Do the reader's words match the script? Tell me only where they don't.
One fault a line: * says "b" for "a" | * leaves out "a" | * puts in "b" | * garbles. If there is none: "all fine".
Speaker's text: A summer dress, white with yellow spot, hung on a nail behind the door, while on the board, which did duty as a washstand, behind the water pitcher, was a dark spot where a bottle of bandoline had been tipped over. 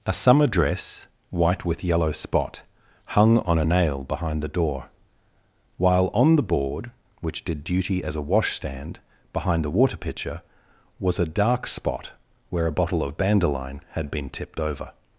all fine